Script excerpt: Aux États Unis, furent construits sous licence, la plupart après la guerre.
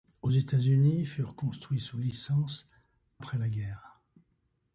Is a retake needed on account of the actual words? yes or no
yes